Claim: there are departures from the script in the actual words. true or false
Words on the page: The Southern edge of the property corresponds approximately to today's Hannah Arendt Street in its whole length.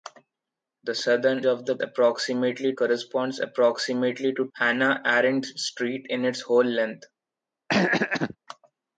true